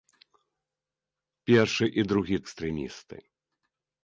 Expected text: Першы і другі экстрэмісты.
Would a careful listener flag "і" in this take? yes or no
no